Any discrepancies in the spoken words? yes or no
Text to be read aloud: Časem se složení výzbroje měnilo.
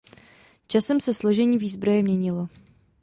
no